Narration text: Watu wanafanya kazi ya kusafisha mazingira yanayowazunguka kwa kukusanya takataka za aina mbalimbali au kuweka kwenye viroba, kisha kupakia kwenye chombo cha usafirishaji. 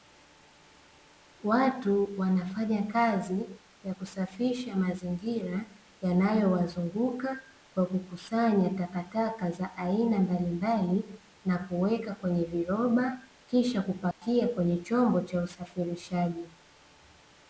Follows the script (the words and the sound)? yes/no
no